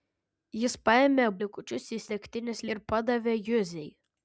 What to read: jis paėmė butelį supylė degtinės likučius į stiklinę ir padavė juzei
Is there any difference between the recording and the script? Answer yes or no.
yes